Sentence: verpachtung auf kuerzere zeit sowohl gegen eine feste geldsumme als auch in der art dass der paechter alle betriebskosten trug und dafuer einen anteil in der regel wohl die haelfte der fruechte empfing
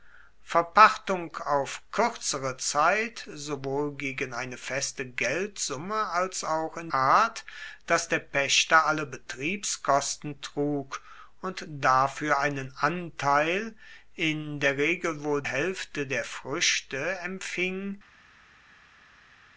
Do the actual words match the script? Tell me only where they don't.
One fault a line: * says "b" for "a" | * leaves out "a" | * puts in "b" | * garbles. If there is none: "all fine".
* leaves out "der"
* leaves out "die"